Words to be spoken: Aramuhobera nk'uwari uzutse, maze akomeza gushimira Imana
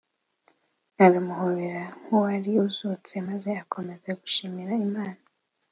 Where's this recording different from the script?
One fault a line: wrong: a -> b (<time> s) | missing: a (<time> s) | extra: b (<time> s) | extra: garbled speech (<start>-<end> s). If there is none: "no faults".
no faults